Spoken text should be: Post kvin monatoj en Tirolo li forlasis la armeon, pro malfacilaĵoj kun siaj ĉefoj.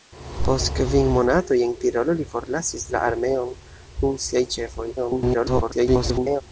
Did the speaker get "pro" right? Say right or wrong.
wrong